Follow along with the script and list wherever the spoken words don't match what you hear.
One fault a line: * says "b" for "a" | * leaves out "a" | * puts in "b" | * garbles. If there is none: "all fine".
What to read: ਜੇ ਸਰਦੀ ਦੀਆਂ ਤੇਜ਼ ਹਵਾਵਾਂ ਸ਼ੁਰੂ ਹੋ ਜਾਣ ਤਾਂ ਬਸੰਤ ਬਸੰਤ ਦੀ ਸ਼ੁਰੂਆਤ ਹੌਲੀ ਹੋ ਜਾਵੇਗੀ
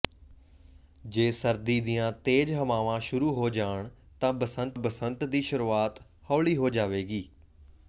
all fine